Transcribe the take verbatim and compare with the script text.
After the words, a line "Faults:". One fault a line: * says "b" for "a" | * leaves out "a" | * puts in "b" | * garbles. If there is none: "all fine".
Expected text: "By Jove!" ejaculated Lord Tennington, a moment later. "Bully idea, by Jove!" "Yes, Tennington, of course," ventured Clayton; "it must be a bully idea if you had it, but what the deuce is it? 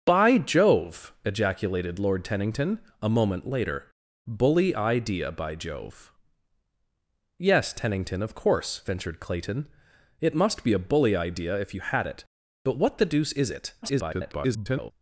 "By Jove!" ejaculated Lord Tennington, a moment later. "Bully idea, by Jove!" "Yes, Tennington, of course," ventured Clayton; "it must be a bully idea if you had it, but what the deuce is it? [garbled]
Faults:
* garbles